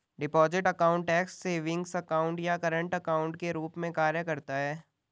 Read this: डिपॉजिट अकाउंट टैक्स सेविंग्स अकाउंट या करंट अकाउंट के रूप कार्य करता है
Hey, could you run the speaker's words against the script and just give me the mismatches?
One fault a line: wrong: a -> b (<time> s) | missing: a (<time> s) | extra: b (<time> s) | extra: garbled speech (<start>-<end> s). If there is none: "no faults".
extra: में (3.8 s)